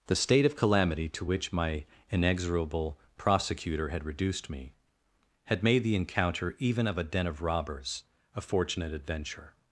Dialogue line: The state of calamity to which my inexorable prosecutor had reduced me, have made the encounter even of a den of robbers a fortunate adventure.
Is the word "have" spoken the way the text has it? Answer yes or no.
no